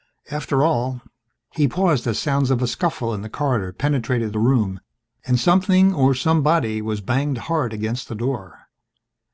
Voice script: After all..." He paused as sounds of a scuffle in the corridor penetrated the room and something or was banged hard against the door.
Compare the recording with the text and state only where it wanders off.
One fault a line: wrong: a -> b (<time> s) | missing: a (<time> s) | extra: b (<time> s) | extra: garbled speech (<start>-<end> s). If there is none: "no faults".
extra: somebody (6.1 s)